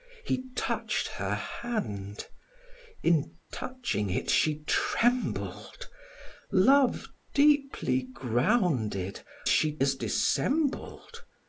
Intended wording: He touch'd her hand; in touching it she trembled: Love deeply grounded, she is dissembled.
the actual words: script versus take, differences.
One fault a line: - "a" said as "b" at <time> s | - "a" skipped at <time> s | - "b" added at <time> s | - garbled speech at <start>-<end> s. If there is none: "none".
none